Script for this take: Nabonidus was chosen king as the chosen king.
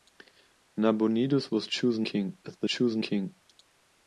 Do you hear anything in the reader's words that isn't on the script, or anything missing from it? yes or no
no